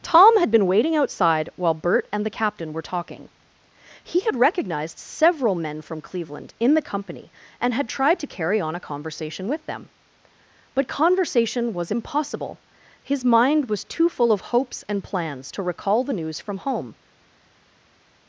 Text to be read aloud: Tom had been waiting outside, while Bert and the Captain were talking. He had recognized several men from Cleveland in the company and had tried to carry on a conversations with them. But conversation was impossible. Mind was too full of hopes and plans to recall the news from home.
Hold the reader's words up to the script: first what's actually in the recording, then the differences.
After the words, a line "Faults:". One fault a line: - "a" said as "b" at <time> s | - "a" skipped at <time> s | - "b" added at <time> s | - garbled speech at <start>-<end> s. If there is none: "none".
Tom had been waiting outside, while Bert and the Captain were talking. He had recognized several men from Cleveland in the company and had tried to carry on a conversation with them. But conversation was impossible. His mind was too full of hopes and plans to recall the news from home.
Faults:
- "conversations" said as "conversation" at 8.8 s
- "His" added at 13.0 s